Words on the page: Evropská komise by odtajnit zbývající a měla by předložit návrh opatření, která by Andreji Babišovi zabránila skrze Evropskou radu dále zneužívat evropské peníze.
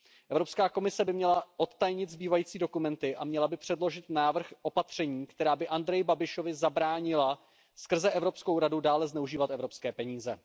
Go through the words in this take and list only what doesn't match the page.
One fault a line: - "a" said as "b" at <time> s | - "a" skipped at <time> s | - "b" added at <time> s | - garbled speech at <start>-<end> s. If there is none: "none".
- "měla" added at 1.1 s
- "dokumenty" added at 2.6 s